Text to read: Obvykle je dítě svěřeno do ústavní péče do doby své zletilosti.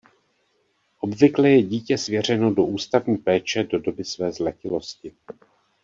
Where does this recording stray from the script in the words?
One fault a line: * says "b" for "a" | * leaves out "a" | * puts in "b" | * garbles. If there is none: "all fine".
all fine